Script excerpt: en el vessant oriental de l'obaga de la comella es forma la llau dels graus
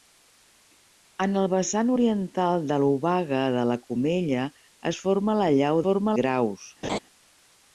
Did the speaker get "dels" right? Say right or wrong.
wrong